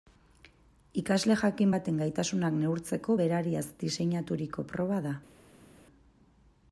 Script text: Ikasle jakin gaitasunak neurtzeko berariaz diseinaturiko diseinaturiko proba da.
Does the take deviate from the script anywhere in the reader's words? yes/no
yes